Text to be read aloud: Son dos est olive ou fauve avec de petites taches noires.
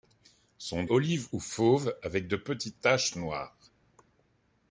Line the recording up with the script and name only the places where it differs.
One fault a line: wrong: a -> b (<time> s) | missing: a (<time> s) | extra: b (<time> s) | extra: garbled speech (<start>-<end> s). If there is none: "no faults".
missing: dos est (0.8 s)